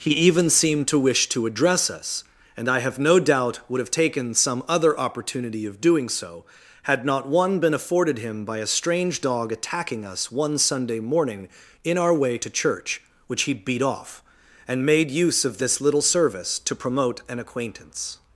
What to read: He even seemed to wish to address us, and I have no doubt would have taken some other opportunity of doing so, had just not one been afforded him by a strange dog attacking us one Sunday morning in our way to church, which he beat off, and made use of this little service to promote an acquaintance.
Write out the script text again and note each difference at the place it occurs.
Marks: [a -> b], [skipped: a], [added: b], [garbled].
He even seemed to wish to address us, and I have no doubt would have taken some other opportunity of doing so, had [skipped: just] not one been afforded him by a strange dog attacking us one Sunday morning in our way to church, which he beat off, and made use of this little service to promote an acquaintance.